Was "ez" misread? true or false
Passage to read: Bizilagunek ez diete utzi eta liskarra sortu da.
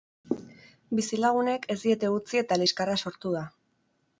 false